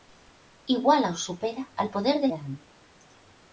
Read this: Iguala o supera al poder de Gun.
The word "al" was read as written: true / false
true